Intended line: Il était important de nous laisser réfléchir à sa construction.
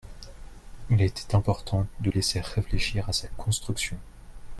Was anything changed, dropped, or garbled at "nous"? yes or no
yes